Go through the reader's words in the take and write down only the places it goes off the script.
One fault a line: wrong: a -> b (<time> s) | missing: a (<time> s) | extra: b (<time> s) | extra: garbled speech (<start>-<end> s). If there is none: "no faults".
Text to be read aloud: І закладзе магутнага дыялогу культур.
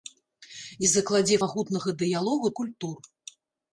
no faults